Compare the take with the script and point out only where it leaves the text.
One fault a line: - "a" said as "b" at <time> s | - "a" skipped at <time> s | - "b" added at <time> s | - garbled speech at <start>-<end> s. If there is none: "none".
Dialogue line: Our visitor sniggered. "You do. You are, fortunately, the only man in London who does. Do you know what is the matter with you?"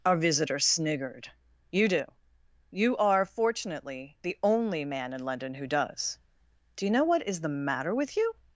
none